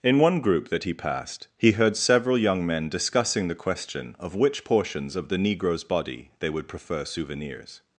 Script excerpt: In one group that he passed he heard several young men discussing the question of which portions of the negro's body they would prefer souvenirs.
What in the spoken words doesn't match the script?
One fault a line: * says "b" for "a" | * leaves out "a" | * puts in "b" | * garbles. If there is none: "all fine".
all fine